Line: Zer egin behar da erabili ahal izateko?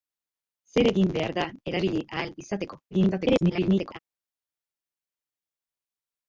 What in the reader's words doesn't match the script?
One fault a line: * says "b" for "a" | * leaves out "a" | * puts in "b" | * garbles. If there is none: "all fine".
* garbles